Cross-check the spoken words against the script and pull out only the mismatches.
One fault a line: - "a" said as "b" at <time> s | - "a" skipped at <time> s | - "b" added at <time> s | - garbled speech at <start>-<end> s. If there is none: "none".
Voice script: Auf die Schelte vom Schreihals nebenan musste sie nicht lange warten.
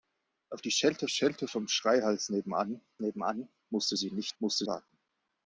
- "Schelte" added at 1.1 s
- "nebenan" added at 3.0 s
- "lange" said as "musste" at 4.4 s